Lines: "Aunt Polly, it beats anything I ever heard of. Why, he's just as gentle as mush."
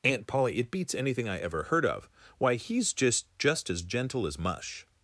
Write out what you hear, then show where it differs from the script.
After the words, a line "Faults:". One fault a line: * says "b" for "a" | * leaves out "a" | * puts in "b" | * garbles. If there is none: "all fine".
"Aunt Polly, it beats anything I ever heard of. Why, he's just just as gentle as mush."
Faults:
* puts in "just"